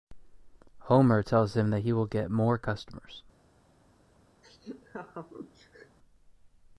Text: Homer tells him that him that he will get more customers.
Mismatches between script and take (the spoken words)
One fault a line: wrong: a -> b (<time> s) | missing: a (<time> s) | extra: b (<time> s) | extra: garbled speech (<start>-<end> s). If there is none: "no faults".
missing: him that (1.8 s)